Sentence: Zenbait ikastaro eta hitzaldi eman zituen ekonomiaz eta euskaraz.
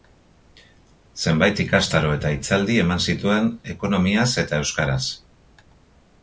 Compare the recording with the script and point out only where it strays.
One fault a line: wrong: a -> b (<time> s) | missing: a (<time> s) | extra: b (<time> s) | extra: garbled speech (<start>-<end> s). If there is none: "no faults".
no faults